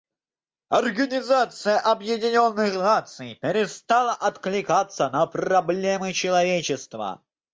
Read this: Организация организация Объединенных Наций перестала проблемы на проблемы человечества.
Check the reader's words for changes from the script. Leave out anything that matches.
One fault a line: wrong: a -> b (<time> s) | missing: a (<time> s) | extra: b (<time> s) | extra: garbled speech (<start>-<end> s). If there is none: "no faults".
missing: организация (1.8 s)
wrong: проблемы -> откликаться (4.1 s)